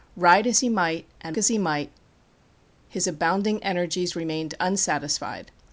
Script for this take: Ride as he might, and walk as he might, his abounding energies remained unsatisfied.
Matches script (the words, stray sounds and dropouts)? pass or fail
fail